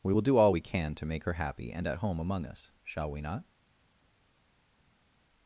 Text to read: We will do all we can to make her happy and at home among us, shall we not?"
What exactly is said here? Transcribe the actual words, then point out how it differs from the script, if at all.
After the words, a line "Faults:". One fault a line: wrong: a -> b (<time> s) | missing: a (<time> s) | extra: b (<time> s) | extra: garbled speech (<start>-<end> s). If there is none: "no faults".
We will do all we can to make her happy and at home among us, shall we not?"
Faults:
no faults